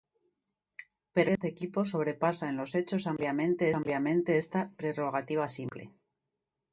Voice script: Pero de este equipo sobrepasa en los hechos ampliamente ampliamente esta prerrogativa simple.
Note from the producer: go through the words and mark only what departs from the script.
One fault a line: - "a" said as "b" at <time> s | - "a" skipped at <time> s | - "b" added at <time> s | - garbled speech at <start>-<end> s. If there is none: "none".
none